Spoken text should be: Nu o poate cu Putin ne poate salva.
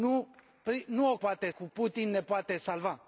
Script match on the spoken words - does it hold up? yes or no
yes